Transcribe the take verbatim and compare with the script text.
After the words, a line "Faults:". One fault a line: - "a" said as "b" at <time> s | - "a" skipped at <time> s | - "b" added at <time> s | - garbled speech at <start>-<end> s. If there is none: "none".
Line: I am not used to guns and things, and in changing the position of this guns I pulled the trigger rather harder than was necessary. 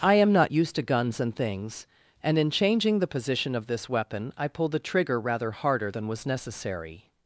I am not used to guns and things, and in changing the position of this weapon I pulled the trigger rather harder than was necessary.
Faults:
- "guns" said as "weapon" at 3.9 s